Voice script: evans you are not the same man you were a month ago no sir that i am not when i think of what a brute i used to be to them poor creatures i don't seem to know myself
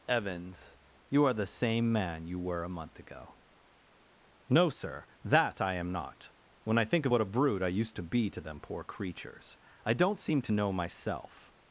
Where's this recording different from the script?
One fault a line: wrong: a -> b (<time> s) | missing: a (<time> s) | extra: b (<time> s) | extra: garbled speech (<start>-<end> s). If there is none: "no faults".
missing: not (1.3 s)